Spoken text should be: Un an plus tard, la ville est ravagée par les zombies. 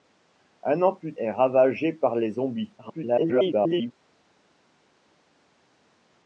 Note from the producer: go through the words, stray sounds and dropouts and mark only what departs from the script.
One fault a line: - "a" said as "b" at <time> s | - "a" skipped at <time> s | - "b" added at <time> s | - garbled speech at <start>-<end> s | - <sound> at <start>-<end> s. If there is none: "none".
- "tard la ville" skipped at 1.1 s
- garbled speech at 2.8-3.9 s